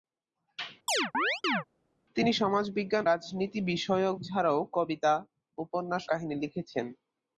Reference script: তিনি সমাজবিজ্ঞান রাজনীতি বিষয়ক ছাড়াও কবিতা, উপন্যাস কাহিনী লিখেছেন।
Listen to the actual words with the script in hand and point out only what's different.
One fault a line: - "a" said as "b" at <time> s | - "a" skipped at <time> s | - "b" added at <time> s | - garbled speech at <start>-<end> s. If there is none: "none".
none